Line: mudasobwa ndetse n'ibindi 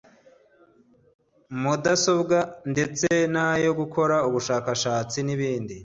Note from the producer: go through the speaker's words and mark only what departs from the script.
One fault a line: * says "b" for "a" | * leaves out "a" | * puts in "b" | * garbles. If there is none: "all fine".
* puts in "n'ayo gukora ubushakashatsi"